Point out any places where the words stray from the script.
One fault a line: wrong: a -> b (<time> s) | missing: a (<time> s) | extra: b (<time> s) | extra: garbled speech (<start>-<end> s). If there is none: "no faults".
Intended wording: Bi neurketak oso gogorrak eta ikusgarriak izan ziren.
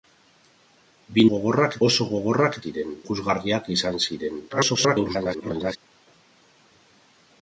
wrong: neurketak -> gogorrak (1.3 s)
wrong: eta -> ziren (2.6 s)
extra: garbled speech (4.5-5.8 s)